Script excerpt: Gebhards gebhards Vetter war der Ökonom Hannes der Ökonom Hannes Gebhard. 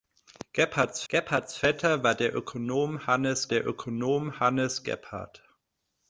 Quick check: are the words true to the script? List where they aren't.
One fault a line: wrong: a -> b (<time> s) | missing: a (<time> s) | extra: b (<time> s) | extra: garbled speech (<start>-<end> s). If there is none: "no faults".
no faults